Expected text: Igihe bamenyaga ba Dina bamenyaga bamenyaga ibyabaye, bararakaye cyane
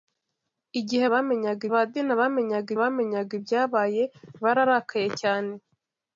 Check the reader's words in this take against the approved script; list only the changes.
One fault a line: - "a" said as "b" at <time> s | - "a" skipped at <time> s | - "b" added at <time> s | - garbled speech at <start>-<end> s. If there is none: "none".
none